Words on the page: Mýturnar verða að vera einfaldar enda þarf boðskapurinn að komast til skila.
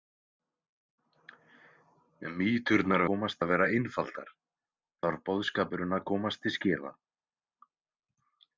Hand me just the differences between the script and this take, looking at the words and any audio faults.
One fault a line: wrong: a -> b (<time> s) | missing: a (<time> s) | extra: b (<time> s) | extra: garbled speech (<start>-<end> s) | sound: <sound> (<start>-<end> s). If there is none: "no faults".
wrong: verða -> komast (3.1 s)
missing: enda (4.3 s)